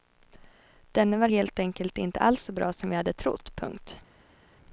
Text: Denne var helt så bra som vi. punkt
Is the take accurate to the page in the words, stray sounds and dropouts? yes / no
no